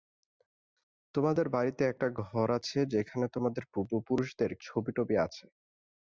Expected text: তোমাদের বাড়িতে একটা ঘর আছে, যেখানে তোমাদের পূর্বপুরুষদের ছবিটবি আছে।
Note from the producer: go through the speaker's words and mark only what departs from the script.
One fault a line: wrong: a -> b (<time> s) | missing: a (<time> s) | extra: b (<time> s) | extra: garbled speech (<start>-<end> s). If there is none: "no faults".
no faults